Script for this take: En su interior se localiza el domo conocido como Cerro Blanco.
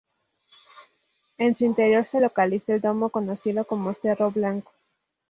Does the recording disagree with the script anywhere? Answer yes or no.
no